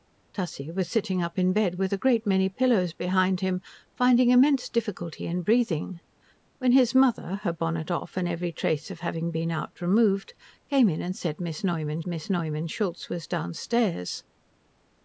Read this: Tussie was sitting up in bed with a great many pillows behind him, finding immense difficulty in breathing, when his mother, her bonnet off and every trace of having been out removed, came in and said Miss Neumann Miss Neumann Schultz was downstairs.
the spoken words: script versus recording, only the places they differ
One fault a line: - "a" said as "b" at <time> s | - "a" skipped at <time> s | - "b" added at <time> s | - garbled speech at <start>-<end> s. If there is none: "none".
none